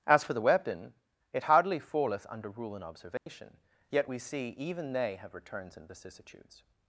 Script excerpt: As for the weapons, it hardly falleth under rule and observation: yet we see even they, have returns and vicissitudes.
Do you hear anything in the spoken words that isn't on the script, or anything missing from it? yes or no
yes